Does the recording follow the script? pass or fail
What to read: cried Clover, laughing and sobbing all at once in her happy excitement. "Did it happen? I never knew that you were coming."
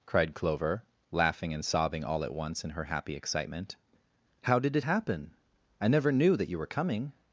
fail